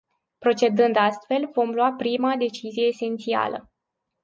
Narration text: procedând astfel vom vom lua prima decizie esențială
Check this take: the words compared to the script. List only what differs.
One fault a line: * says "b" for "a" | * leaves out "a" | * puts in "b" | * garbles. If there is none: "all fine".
* leaves out "vom"